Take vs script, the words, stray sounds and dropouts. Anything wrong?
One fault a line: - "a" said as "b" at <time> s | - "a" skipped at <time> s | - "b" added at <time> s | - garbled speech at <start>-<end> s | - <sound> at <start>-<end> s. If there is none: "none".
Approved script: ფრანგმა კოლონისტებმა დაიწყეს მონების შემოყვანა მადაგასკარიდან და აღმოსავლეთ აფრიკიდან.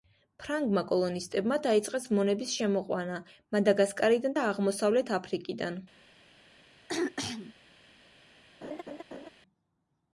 - throat clearing at 6.9-7.5 s
- laugh at 8.6-9.3 s